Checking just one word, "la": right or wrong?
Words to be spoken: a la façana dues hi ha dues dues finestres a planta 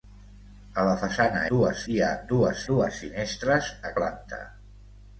right